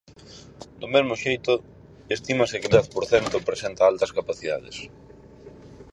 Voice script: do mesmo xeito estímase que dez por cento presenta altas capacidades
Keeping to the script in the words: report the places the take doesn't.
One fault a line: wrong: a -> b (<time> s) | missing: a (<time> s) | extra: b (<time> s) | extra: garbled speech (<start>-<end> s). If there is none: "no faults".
no faults